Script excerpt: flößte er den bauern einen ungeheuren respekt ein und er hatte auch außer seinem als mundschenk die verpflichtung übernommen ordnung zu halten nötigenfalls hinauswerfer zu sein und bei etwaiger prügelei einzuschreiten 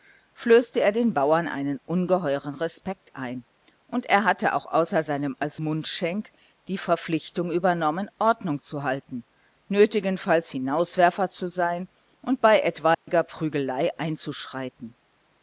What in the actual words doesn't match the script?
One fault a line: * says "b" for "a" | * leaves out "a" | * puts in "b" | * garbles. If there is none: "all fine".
all fine